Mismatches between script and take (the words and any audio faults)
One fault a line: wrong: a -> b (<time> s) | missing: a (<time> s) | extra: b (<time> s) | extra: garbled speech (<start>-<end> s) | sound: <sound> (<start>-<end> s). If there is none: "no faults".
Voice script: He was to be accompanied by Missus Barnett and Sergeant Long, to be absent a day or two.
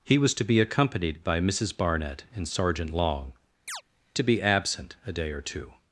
sound: chirp (3.7-3.8 s)